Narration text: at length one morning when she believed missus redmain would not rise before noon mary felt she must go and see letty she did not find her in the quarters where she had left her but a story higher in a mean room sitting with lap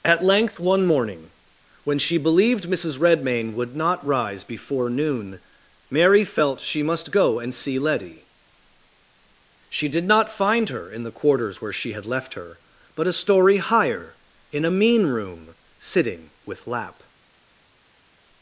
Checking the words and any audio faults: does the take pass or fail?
pass